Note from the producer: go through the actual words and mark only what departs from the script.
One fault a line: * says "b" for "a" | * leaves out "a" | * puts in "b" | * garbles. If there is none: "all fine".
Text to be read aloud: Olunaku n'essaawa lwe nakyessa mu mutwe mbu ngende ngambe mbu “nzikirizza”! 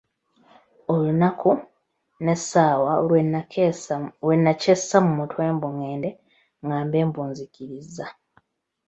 all fine